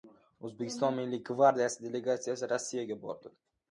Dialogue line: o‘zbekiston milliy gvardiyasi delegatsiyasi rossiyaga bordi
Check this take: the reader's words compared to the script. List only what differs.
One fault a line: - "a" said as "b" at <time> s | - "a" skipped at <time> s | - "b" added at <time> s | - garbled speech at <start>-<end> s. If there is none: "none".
none